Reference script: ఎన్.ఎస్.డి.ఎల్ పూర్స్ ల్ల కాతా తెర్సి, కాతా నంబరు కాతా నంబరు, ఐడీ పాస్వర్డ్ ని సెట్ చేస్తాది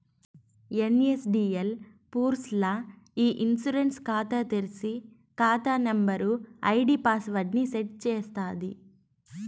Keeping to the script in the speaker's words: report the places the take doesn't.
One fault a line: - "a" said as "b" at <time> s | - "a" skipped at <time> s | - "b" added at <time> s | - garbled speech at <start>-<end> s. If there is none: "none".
- "కాతా తెర్సి" said as "ఇ ఇన్సూరెన్స్" at 3.2 s
- "నంబరు" said as "తెర్సి" at 4.5 s